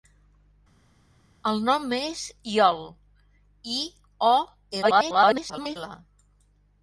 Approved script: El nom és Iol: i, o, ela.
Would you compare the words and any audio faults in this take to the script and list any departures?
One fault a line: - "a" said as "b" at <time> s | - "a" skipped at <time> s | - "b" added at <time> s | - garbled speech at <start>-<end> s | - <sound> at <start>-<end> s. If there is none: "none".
- garbled speech at 4.8-5.8 s